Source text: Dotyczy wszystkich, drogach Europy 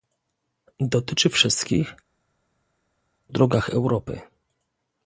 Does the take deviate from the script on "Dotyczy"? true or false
false